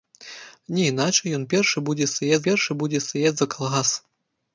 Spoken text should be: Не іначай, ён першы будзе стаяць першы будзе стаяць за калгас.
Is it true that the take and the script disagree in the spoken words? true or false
false